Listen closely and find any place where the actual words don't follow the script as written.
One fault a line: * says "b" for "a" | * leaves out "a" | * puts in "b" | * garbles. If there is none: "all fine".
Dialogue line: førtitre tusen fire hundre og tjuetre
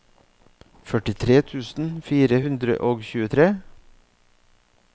all fine